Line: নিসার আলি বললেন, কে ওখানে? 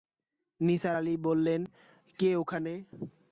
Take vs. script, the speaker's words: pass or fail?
pass